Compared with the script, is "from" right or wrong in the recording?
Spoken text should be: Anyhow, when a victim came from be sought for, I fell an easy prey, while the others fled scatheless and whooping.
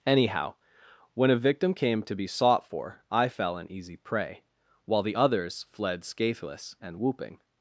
wrong